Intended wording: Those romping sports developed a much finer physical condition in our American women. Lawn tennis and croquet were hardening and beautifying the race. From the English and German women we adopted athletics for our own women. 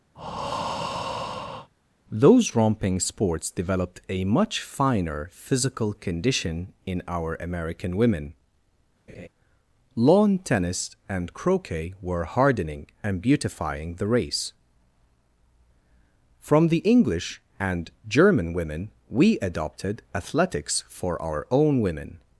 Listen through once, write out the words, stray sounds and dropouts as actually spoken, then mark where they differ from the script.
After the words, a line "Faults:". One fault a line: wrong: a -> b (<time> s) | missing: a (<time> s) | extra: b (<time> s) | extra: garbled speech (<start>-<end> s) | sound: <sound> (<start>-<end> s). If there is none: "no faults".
Those romping sports developed a much finer physical condition in our American women. Lawn tennis and croquet were hardening and beautifying the race. From the English and German women we adopted athletics for our own women.
Faults:
sound: breath (0.1-1.7 s)
sound: laugh (9.1-9.3 s)